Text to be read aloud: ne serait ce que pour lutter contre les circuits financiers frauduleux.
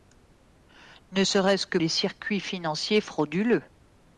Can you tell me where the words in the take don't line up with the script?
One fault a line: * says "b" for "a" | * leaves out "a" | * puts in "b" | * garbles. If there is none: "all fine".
* leaves out "pour lutter contre"